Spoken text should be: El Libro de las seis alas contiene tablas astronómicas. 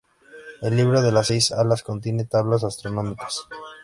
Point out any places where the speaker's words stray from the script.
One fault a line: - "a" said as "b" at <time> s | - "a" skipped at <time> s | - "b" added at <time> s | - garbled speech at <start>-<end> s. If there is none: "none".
none